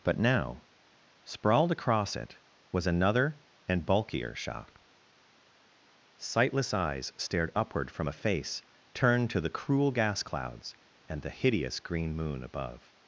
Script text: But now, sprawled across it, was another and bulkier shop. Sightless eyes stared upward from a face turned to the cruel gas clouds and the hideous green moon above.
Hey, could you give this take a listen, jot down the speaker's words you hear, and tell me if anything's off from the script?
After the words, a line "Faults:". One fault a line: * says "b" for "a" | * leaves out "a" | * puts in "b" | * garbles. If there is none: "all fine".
But now, sprawled across it, was another and bulkier shop. Sightless eyes stared upward from a face turned to the cruel gas clouds and the hideous green moon above.
Faults:
all fine